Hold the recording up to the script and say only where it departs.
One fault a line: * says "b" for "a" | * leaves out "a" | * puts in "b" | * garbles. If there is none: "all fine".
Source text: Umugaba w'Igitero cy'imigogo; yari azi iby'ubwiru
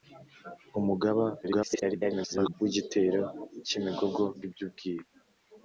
* garbles
* leaves out "yari azi"